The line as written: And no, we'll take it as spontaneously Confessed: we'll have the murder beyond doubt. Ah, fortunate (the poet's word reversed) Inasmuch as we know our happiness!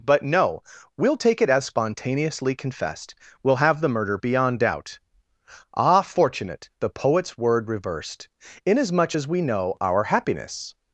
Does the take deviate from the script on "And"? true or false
true